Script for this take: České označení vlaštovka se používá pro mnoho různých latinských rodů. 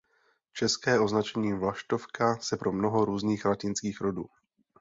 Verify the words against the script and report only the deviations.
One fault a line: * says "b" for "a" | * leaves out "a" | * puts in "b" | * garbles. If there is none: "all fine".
* leaves out "používá"